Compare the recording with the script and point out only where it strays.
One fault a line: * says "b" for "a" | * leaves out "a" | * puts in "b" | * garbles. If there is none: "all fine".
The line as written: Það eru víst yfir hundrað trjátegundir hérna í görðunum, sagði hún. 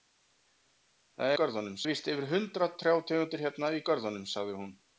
* says "görðunum" for "eru"